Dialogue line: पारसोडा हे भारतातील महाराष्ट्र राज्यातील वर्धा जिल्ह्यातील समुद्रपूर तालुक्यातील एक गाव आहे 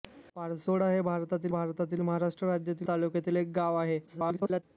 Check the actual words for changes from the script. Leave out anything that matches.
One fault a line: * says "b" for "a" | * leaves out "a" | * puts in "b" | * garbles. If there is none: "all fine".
* puts in "भारतातील"
* leaves out "वर्धा जिल्ह्यातील समुद्रपूर"
* garbles